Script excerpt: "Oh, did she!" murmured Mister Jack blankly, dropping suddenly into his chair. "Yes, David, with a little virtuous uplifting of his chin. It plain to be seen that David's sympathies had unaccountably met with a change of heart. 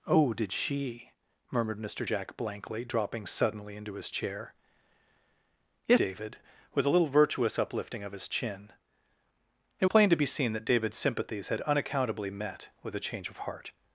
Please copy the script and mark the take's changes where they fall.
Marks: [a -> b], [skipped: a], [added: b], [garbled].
"Oh, did she!" murmured Mister Jack blankly, dropping suddenly into his chair. "Yes, David, with a little virtuous uplifting of his chin. It plain to be seen that David's sympathies had unaccountably met with a change of heart.